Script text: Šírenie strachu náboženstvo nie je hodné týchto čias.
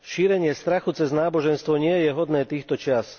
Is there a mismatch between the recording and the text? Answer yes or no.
yes